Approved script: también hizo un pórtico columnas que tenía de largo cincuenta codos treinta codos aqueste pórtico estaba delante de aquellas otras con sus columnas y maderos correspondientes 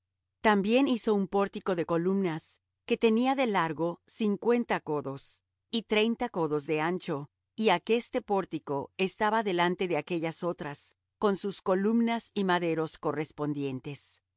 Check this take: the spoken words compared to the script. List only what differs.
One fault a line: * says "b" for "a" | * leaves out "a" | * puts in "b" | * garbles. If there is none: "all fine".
* puts in "de"
* puts in "y"
* puts in "de ancho y"